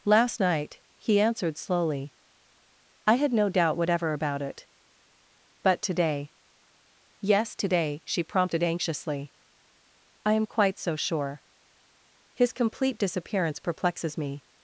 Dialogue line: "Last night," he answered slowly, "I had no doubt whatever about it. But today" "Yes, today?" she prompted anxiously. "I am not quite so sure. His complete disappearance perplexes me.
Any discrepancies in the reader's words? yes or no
yes